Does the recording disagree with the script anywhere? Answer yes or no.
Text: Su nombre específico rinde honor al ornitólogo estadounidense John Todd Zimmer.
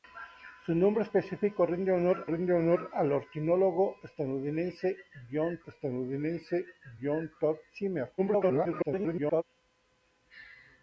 yes